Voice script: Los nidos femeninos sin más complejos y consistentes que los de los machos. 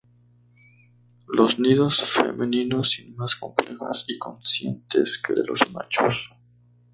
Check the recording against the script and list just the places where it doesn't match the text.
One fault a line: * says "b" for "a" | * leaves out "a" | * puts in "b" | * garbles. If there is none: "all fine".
* leaves out "los"